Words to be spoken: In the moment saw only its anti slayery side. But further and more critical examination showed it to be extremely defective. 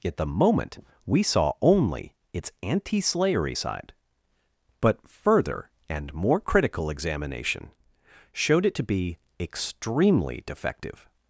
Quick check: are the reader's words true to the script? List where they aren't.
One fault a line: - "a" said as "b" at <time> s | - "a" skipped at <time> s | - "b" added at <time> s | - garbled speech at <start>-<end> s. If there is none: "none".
- "In" said as "At" at 0.0 s
- "we" added at 1.0 s